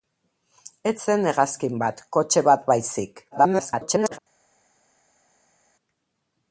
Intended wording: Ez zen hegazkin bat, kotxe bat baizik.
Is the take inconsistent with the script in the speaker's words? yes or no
yes